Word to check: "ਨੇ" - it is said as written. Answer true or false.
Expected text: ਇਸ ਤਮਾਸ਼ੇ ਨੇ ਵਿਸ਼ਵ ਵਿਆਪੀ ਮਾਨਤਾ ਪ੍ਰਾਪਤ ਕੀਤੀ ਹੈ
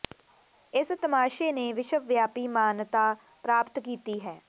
true